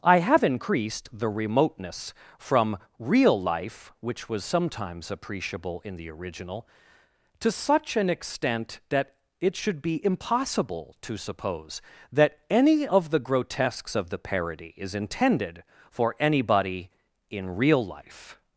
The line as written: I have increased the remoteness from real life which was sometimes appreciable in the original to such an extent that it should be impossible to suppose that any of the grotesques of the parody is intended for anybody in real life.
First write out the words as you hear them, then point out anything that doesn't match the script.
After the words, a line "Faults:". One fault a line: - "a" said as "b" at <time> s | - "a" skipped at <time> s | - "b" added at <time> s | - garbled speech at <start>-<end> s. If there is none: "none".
I have increased the remoteness from real life which was sometimes appreciable in the original to such an extent that it should be impossible to suppose that any of the grotesques of the parody is intended for anybody in real life.
Faults:
none